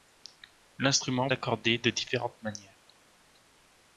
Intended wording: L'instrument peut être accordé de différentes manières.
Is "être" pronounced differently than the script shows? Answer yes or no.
yes